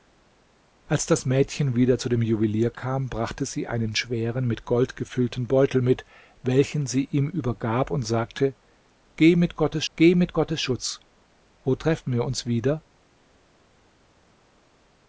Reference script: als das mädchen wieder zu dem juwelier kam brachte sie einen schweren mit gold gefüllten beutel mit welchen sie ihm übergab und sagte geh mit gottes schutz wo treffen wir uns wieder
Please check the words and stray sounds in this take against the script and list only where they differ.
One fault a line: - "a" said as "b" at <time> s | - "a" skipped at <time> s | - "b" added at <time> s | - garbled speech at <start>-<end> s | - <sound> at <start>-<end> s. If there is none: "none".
- "geh mit gottes" added at 9.9 s